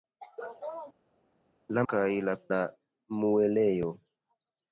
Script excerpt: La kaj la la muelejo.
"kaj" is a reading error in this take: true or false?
false